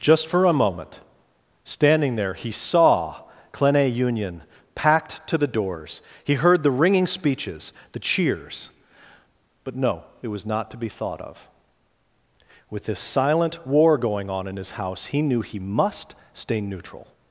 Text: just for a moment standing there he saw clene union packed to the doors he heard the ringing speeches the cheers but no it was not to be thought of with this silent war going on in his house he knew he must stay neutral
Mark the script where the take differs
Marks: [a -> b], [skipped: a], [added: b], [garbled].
just for a moment standing there he saw clene union packed to the doors he heard the ringing speeches the cheers but no it was not to be thought of with this silent war going on in his house he knew he must stay neutral